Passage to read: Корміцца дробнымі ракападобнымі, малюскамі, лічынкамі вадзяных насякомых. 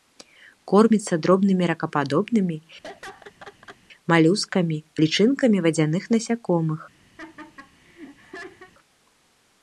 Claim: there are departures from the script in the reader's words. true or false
false